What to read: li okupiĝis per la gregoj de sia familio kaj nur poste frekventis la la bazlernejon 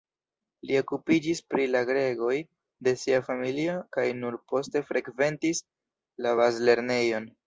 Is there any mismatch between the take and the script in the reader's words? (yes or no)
yes